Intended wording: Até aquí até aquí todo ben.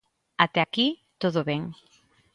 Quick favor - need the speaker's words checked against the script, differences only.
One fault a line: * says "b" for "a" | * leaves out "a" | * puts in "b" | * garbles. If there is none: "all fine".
* leaves out "até aquí"